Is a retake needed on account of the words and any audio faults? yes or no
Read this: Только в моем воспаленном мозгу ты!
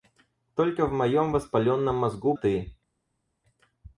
no